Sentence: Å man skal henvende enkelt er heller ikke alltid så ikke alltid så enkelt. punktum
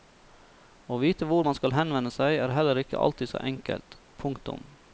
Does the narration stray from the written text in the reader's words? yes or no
yes